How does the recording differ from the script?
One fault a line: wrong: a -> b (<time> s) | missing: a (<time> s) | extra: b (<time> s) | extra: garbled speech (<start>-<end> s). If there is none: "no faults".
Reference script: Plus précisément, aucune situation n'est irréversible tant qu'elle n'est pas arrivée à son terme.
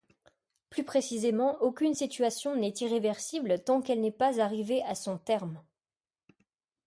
no faults